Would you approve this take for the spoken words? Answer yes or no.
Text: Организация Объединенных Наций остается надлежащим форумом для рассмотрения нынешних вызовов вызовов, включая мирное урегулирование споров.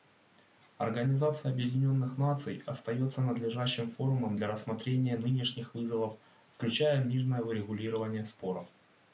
no